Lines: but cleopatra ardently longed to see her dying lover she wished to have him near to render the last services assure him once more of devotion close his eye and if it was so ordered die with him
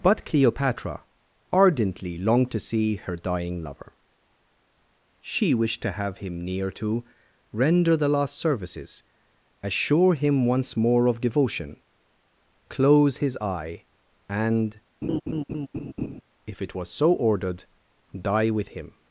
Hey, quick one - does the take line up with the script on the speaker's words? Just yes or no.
yes